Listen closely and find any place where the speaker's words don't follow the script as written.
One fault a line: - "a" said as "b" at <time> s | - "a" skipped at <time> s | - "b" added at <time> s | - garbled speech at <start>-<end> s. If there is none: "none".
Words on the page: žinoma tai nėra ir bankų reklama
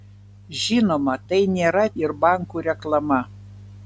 none